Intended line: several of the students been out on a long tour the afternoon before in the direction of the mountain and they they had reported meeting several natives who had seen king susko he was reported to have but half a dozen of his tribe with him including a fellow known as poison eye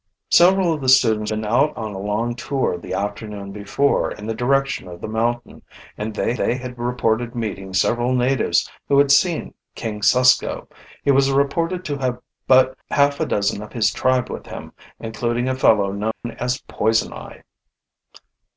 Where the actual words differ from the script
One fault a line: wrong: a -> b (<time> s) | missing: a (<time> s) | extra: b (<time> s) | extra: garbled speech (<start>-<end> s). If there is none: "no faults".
no faults